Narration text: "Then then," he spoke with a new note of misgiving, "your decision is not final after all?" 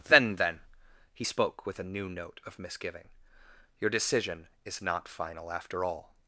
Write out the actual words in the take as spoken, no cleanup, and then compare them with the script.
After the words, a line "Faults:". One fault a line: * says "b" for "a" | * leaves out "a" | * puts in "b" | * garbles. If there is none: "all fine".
"Then then," he spoke with a new note of misgiving, "your decision is not final after all?"
Faults:
all fine